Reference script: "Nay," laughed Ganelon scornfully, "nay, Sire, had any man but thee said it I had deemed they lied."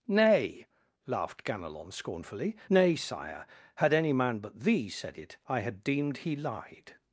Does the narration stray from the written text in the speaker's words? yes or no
yes